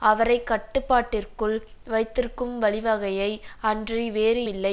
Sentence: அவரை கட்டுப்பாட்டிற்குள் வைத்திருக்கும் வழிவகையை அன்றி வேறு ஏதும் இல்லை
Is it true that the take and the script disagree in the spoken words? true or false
true